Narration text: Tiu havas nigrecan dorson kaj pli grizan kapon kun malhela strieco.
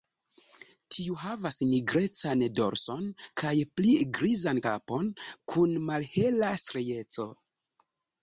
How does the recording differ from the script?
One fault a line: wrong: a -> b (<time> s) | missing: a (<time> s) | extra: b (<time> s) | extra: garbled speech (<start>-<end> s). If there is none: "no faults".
no faults